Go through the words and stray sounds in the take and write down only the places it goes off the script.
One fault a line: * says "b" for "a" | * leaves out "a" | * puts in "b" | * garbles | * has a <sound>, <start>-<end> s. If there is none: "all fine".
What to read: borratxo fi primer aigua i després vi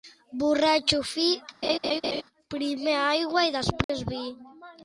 * has a laugh, 1.6-2.2 s
* has a dropout, 3.8-3.9 s